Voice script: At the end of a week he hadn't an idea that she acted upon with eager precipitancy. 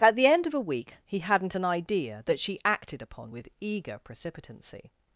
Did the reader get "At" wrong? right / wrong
right